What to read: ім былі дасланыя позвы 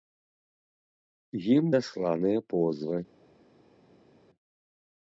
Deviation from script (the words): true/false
true